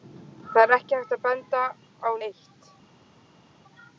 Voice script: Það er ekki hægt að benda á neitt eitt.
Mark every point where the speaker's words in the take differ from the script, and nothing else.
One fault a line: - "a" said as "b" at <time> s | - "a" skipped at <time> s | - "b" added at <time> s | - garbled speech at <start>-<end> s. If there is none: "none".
- "neitt" skipped at 2.1 s